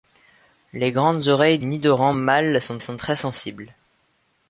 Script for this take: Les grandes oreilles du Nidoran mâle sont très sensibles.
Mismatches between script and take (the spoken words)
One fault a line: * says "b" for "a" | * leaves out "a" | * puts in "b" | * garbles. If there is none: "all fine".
* leaves out "du"
* puts in "sont"